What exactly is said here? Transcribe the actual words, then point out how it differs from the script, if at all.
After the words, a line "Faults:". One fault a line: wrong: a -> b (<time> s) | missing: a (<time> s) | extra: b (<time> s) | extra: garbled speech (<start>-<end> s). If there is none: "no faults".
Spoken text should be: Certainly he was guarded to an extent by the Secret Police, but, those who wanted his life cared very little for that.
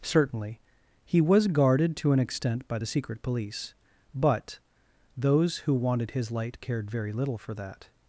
Certainly he was guarded to an extent by the Secret Police, but, those who wanted his light cared very little for that.
Faults:
wrong: life -> light (6.3 s)